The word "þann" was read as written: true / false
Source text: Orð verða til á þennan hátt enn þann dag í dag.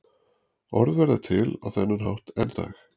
false